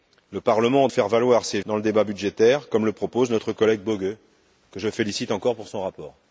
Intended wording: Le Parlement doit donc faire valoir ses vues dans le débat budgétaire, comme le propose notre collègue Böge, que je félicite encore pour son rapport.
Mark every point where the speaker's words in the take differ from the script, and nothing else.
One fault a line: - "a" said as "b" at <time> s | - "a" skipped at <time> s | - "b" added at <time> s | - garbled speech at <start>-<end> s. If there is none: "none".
- "doit donc" skipped at 0.9 s
- "vues" skipped at 1.6 s